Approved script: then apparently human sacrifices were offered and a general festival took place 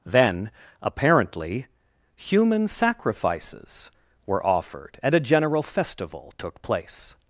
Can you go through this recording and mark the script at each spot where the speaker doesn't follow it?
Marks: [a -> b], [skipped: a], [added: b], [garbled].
then apparently human sacrifices were offered and a general festival took place